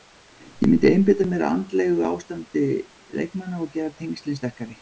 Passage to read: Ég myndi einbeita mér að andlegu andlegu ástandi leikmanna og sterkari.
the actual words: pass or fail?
fail